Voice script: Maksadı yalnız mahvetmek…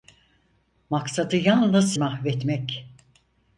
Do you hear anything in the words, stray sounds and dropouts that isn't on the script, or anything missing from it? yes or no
no